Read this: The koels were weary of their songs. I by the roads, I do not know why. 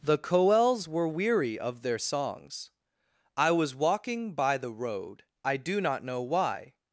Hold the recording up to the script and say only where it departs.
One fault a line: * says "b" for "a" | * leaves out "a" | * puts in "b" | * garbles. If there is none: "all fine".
* puts in "was walking"
* says "road" for "roads"